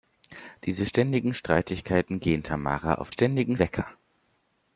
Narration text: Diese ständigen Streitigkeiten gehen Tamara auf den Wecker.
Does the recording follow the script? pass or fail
fail